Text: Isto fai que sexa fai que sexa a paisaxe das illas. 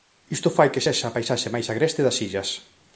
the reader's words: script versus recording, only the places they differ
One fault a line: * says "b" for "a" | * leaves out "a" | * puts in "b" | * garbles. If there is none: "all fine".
* says "a paisaxe máis agreste" for "fai que sexa a paisaxe"